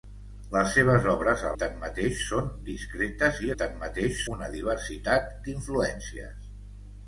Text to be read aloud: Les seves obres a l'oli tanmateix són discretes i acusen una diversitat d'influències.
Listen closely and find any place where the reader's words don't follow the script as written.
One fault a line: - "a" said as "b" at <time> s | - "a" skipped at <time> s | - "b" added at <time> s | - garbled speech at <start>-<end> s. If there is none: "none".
- "l'oli" skipped at 1.5 s
- "acusen" said as "tanmateix" at 3.6 s